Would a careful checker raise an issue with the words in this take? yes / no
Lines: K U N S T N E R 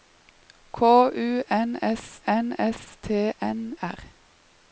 yes